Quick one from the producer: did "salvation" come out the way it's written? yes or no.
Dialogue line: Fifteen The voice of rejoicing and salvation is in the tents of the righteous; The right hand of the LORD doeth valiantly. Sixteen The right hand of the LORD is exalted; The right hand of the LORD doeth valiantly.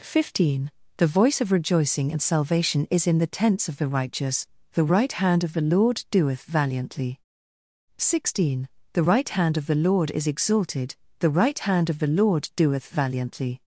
yes